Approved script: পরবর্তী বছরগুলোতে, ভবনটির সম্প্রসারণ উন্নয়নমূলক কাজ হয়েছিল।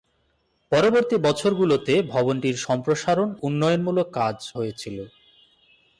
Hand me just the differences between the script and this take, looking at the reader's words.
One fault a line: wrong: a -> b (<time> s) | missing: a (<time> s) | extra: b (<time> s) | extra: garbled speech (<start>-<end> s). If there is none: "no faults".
no faults